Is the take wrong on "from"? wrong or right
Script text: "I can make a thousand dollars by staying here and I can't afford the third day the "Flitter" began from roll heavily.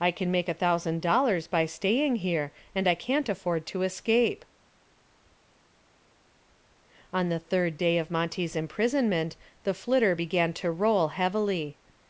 wrong